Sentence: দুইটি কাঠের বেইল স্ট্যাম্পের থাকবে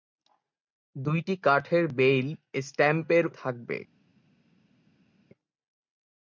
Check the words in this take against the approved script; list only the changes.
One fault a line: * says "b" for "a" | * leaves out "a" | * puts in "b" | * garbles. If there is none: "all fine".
all fine